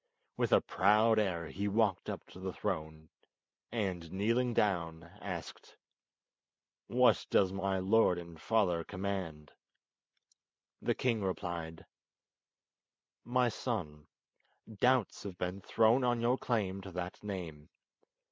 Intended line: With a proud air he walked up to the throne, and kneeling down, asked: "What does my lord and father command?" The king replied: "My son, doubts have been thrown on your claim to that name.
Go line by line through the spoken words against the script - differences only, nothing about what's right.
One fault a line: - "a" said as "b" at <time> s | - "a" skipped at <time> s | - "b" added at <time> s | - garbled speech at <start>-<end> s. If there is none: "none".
none